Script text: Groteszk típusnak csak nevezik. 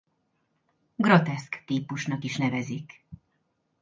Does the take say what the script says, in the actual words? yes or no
no